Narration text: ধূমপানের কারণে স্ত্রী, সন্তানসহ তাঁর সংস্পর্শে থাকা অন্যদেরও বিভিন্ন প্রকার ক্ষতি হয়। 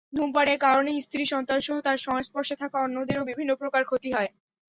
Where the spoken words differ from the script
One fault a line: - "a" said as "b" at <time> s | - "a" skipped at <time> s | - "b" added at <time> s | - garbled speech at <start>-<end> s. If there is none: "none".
none